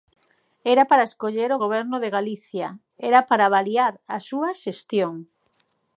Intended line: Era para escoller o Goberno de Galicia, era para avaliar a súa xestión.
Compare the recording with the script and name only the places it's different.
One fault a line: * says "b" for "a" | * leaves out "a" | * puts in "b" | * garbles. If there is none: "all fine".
all fine